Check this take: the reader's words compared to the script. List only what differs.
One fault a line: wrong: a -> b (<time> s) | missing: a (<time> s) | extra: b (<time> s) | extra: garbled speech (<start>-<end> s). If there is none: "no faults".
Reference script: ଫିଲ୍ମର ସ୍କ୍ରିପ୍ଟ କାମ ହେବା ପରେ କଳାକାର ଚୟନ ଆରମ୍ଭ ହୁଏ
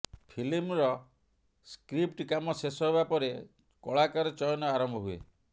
extra: ଶେଷ (2.6 s)